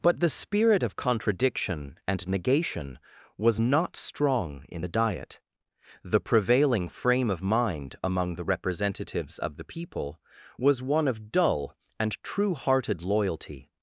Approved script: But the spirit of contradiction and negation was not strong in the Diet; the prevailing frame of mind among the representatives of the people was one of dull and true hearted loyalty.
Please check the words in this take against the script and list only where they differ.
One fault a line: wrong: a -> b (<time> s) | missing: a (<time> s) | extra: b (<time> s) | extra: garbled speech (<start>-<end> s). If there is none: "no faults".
no faults